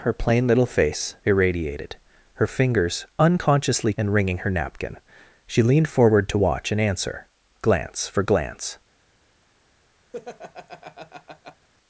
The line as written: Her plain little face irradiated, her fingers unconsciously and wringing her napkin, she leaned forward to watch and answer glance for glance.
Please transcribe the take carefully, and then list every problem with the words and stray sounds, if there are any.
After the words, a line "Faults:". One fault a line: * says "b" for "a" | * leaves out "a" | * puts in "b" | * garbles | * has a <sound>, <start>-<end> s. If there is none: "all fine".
Her plain little face irradiated, her fingers unconsciously and wringing her napkin, she leaned forward to watch and answer glance for glance.
Faults:
* has a laugh, 10.1-11.7 s